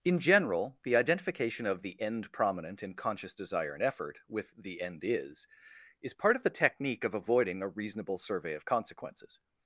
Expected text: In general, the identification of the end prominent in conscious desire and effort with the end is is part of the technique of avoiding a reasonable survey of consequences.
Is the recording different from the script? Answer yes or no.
no